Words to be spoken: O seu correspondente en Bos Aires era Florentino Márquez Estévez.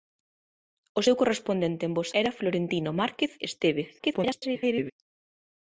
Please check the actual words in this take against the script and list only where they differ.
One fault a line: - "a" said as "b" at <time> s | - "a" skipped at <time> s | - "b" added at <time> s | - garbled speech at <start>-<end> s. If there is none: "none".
- "Aires" skipped at 2.1 s
- garbled speech at 4.0-4.9 s